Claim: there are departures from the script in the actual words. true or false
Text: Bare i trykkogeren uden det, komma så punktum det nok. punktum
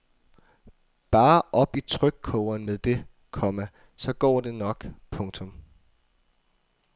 true